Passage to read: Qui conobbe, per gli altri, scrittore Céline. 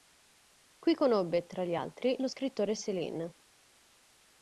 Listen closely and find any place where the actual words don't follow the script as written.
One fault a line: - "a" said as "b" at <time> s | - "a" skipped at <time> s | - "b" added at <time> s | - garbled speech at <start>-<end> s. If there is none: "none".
- "per" said as "tra" at 1.4 s
- "lo" added at 2.2 s